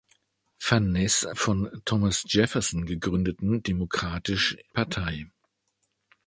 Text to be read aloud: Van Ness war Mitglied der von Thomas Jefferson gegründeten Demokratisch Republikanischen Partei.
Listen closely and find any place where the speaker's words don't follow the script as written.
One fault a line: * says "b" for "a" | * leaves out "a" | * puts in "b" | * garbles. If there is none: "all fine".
* leaves out "war Mitglied der"
* leaves out "Republikanischen"